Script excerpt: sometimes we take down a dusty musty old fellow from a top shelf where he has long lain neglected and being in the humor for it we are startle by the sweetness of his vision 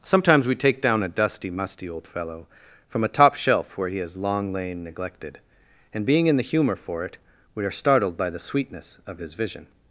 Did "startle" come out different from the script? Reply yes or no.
yes